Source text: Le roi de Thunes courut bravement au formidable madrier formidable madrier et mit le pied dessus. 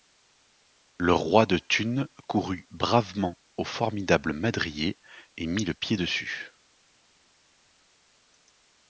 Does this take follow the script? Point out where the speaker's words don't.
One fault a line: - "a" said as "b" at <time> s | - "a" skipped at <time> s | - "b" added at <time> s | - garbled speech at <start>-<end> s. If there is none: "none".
- "formidable madrier" skipped at 5.0 s